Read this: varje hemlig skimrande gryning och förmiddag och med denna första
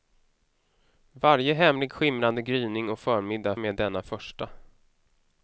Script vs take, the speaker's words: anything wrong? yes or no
no